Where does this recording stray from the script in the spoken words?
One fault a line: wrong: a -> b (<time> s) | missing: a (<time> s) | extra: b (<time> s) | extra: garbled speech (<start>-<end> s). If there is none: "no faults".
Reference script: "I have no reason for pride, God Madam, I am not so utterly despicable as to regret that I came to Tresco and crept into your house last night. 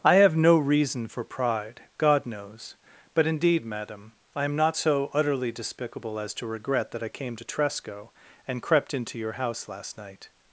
extra: knows but indeed (2.2 s)